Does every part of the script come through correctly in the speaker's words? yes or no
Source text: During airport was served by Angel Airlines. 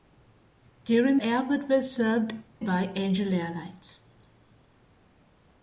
yes